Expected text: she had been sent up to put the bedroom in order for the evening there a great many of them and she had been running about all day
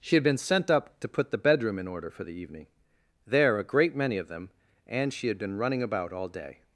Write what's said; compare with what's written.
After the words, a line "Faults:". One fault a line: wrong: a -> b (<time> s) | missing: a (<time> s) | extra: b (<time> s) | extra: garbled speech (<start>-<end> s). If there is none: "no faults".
she had been sent up to put the bedroom in order for the evening there a great many of them and she had been running about all day
Faults:
no faults